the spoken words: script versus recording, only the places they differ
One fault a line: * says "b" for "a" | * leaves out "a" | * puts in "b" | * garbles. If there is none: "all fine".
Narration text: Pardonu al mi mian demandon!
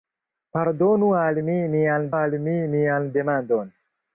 * puts in "al mi mian"